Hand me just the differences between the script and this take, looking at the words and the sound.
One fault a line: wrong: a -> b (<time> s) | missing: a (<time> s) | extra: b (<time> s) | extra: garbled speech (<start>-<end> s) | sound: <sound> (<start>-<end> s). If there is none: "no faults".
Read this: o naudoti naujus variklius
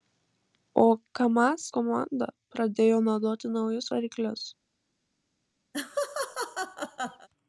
extra: kamaz komanda pradėjo (1.2 s)
sound: laugh (5.7-7.3 s)